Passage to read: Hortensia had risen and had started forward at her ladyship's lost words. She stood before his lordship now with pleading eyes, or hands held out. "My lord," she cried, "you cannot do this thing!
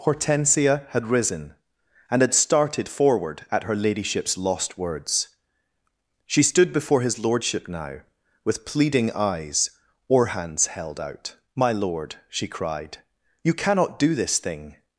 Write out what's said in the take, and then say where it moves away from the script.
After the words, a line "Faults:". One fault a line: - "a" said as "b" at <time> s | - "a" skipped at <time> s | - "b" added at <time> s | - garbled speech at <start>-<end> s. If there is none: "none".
Hortensia had risen and had started forward at her ladyship's lost words. She stood before his lordship now with pleading eyes, or hands held out. "My lord," she cried, "you cannot do this thing!
Faults:
none